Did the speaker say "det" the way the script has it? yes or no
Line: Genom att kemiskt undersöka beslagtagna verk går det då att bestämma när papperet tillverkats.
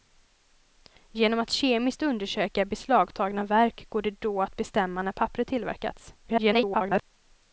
yes